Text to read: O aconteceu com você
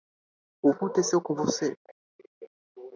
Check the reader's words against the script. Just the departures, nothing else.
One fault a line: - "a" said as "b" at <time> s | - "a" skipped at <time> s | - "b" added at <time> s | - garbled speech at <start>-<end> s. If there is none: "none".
none